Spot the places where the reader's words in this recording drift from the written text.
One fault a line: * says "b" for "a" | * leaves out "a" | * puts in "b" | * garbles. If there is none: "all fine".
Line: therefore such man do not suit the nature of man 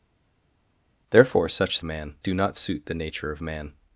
all fine